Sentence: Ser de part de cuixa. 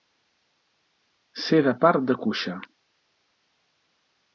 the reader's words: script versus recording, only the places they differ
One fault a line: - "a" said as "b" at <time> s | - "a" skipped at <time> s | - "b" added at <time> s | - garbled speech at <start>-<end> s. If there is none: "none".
none